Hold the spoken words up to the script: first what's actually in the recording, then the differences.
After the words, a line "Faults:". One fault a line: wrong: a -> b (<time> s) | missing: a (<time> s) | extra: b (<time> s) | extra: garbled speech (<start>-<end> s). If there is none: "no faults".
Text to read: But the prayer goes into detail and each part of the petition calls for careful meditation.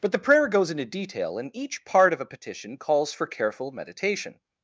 But the prayer goes into detail and each part of a petition calls for careful meditation.
Faults:
wrong: the -> a (2.2 s)